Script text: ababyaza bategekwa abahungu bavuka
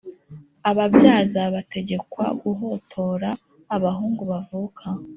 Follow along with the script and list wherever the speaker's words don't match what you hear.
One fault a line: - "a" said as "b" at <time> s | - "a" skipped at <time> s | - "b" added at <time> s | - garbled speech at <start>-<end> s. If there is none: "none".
- "guhotora" added at 2.4 s